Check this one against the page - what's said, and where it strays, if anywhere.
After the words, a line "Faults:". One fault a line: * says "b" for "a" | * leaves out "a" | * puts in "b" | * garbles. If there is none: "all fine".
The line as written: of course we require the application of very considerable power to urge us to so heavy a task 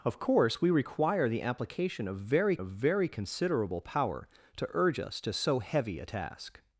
of course we require the application of very of very considerable power to urge us to so heavy a task
Faults:
* puts in "of very"